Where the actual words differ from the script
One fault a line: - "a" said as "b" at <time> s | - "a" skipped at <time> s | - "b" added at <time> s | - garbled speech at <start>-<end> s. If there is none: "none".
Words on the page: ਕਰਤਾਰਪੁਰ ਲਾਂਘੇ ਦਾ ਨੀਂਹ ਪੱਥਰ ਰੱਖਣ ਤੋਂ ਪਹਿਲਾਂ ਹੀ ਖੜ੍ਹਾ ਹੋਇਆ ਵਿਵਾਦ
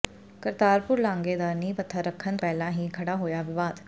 - "ਤੋਂ" skipped at 2.4 s